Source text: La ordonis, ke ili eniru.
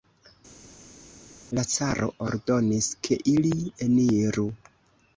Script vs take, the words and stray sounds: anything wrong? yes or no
yes